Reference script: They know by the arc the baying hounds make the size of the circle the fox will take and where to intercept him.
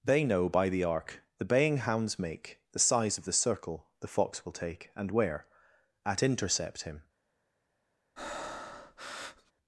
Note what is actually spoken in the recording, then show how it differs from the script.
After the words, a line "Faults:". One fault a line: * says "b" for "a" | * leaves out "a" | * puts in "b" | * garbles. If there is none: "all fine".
They know by the arc the baying hounds make the size of the circle the fox will take and where at intercept him.
Faults:
* says "at" for "to"